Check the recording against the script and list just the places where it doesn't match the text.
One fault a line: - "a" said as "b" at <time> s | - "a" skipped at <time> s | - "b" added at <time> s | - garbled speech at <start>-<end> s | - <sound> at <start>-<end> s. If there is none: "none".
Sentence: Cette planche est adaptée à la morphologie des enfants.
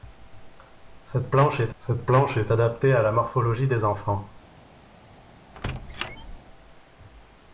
- "cette planche est" added at 1.8 s
- squeak at 5.5-6.4 s